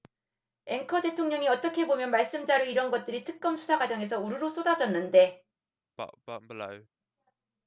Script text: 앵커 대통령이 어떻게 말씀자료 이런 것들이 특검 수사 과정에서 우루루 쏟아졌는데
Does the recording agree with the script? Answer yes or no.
no